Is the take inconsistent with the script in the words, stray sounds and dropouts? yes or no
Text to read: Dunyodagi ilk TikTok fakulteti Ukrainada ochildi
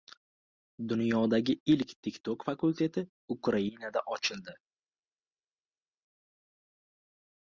no